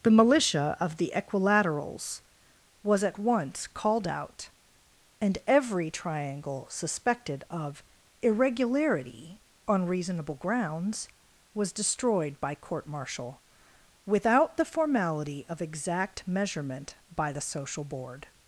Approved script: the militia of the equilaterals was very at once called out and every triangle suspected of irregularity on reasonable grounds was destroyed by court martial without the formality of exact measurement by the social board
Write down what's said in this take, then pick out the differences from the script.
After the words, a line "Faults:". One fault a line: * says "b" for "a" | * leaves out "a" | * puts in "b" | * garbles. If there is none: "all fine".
the militia of the equilaterals was at once called out and every triangle suspected of irregularity on reasonable grounds was destroyed by court martial without the formality of exact measurement by the social board
Faults:
* leaves out "very"